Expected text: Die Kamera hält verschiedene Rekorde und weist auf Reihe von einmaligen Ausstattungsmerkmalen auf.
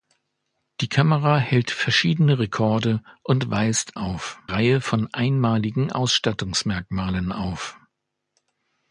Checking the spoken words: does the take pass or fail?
pass